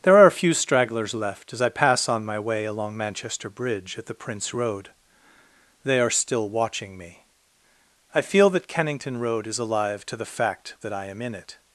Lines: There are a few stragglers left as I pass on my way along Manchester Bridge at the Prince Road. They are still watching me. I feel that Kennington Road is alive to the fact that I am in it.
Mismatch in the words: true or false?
false